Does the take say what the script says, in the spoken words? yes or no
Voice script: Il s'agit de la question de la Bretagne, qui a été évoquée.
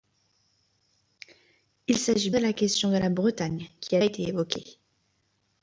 yes